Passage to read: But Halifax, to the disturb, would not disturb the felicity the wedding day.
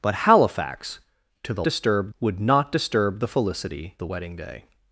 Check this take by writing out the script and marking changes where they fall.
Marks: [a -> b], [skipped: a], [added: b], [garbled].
But Halifax, to the disturb, would not disturb the felicity the wedding day.